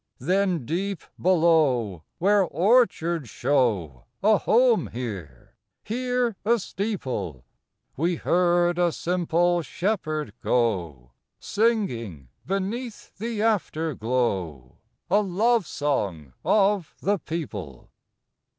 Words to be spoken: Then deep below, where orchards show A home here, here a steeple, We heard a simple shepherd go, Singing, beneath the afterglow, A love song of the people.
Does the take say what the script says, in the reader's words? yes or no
yes